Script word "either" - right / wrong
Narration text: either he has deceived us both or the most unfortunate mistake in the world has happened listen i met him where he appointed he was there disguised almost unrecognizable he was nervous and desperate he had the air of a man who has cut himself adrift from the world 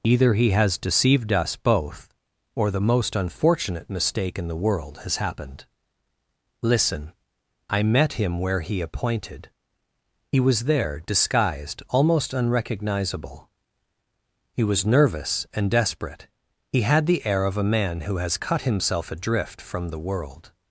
right